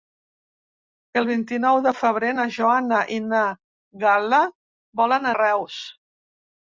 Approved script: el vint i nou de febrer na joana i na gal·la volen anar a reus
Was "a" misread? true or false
true